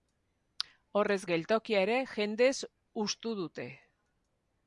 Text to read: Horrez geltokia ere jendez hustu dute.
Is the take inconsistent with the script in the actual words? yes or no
no